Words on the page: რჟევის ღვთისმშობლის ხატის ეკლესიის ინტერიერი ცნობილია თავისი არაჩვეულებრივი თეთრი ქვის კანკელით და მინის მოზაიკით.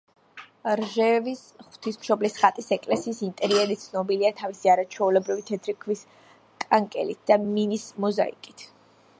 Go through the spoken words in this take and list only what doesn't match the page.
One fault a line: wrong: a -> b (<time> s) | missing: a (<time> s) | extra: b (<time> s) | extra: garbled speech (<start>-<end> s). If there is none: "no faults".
no faults